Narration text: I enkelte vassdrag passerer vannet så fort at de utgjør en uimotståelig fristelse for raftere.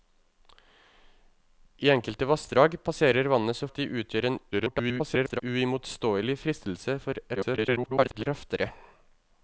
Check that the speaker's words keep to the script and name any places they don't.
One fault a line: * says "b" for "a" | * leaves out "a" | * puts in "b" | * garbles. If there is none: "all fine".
* leaves out "fort"
* garbles
* garbles